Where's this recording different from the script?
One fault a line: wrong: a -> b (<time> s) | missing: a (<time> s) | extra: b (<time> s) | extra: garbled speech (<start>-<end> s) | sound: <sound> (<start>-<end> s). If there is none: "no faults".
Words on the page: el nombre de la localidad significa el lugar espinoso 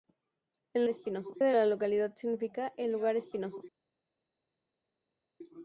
wrong: nombre -> espinoso (0.9 s)